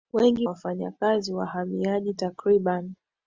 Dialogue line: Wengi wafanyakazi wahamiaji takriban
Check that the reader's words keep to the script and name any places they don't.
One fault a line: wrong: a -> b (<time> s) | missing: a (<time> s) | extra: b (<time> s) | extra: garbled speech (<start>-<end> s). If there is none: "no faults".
no faults